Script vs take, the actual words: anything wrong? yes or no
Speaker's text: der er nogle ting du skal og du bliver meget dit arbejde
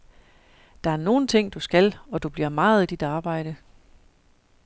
no